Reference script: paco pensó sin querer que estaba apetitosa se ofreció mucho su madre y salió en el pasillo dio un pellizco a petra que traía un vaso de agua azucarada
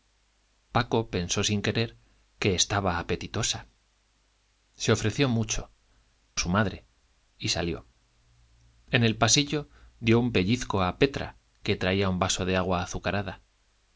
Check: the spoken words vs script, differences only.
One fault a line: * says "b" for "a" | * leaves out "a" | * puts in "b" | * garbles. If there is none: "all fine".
all fine